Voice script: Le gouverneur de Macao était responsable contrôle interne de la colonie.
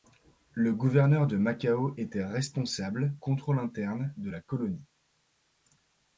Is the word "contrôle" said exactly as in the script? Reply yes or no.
yes